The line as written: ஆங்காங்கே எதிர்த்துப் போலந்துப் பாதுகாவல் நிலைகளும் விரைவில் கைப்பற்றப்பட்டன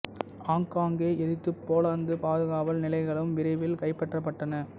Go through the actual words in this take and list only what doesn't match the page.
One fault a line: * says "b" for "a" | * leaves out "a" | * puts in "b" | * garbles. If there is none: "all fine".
all fine